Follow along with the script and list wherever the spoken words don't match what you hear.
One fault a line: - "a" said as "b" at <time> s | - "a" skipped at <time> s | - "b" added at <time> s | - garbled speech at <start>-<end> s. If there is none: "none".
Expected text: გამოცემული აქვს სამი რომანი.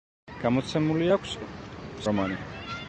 - "სამი" skipped at 1.3 s